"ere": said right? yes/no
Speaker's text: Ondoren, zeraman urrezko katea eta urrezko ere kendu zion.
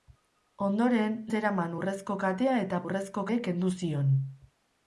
yes